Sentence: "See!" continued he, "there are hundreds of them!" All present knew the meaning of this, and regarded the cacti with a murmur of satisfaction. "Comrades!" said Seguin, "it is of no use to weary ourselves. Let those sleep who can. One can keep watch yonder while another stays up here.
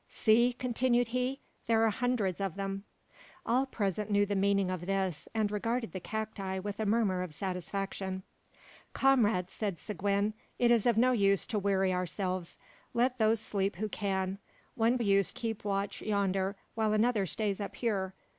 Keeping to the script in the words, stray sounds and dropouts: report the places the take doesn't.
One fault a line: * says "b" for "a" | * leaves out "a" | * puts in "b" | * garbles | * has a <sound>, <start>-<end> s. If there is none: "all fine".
* says "use" for "can"